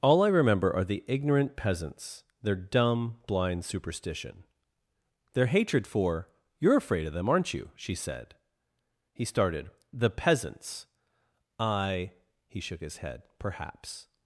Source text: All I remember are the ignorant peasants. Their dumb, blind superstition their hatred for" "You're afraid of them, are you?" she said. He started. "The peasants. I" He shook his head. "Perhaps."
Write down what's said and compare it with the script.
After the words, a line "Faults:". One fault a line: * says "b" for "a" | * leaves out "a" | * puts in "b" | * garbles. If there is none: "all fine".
All I remember are the ignorant peasants. Their dumb, blind superstition their hatred for" "You're afraid of them, aren't you?" she said. He started. "The peasants. I" He shook his head. "Perhaps."
Faults:
* says "aren't" for "are"